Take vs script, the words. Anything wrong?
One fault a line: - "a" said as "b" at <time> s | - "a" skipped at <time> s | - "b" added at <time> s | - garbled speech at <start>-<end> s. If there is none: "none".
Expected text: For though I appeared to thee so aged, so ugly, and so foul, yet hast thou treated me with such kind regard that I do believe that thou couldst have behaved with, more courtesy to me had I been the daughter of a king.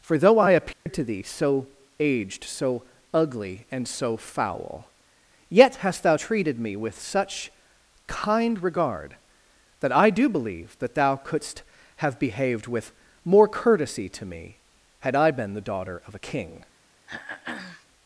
none